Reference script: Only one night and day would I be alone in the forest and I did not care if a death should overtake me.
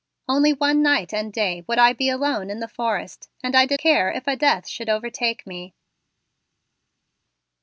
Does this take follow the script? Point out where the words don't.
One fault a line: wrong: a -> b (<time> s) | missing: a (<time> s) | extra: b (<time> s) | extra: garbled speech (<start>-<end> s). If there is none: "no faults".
missing: not (3.8 s)